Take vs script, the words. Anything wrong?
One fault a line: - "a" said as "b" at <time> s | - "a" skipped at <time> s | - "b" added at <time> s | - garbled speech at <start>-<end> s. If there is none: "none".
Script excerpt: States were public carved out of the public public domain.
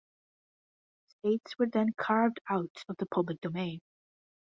- "public" said as "then" at 1.7 s
- "public" skipped at 3.4 s